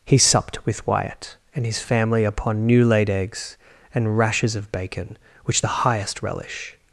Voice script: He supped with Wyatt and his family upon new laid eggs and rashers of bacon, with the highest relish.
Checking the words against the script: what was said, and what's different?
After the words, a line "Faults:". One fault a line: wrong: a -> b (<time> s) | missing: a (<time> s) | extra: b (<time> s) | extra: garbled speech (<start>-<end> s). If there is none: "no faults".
He supped with Wyatt and his family upon new laid eggs and rashers of bacon, which the highest relish.
Faults:
wrong: with -> which (5.5 s)